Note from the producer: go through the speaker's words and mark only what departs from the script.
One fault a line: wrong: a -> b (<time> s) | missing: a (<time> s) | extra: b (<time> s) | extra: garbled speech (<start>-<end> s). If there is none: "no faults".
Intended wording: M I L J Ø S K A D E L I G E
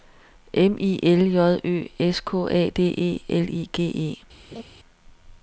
no faults